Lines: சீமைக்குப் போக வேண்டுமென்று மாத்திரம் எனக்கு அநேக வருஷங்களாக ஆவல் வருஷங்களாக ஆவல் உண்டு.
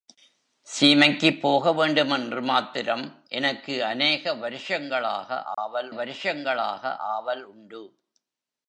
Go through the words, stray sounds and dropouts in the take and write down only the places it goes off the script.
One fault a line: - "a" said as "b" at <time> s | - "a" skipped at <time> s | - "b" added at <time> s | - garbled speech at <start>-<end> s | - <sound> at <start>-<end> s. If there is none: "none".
- dropout at 5.5-5.6 s